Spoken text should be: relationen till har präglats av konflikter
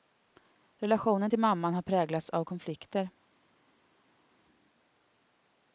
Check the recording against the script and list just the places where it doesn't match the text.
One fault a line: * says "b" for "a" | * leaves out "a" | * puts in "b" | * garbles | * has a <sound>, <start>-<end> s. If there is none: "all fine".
* puts in "mamman"